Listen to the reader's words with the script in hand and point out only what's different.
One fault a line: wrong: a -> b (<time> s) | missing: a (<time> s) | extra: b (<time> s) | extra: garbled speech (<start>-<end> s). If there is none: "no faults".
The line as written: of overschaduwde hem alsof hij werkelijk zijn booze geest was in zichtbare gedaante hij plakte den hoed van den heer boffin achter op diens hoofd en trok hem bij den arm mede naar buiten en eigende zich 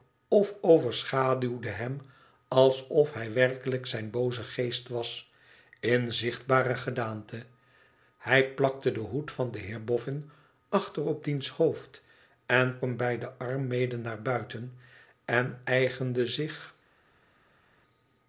missing: trok (12.8 s)